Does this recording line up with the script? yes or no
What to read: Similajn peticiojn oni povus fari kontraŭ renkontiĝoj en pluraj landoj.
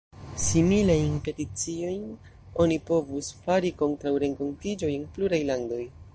yes